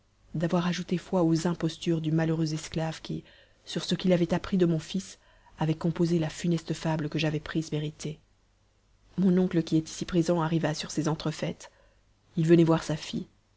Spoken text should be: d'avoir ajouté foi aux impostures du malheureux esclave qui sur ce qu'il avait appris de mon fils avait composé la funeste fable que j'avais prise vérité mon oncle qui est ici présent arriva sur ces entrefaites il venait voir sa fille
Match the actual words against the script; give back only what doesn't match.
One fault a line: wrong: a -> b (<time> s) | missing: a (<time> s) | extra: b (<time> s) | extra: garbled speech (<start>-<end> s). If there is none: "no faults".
no faults